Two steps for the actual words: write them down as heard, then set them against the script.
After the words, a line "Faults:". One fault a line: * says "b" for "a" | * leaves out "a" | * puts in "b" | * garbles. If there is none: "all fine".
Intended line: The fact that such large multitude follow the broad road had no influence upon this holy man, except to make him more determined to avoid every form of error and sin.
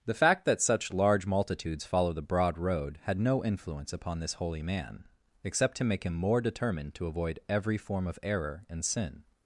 The fact that such large multitudes follow the broad road had no influence upon this holy man, except to make him more determined to avoid every form of error and sin.
Faults:
* says "multitudes" for "multitude"